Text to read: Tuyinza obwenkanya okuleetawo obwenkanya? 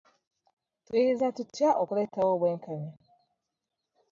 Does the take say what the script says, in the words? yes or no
no